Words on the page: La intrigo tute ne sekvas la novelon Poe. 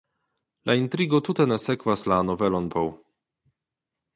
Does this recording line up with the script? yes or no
yes